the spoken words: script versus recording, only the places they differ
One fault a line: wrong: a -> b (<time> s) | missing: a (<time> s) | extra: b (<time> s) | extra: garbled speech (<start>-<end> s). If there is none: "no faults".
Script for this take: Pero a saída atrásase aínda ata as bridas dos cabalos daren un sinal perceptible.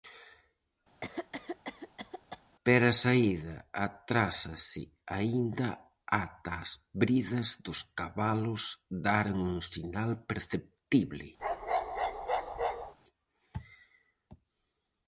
no faults